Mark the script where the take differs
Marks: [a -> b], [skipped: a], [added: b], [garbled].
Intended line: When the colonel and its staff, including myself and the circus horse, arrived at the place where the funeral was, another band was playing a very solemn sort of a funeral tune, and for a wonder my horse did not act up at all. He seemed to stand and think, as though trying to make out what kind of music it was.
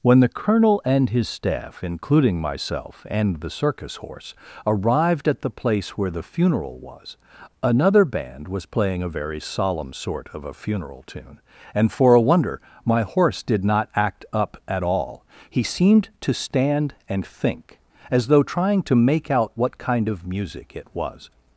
When the colonel and [its -> his] staff, including myself and the circus horse, arrived at the place where the funeral was, another band was playing a very solemn sort of a funeral tune, and for a wonder my horse did not act up at all. He seemed to stand and think, as though trying to make out what kind of music it was.